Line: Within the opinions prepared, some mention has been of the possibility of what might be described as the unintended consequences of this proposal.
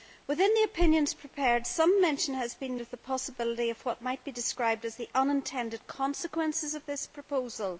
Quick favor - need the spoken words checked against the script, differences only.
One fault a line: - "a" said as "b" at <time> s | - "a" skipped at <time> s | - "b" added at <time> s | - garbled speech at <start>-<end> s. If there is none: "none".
none